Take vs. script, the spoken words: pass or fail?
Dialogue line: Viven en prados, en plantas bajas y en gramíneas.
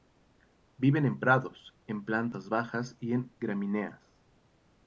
pass